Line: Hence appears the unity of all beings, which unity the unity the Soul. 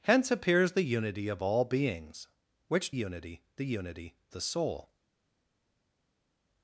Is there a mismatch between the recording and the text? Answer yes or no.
no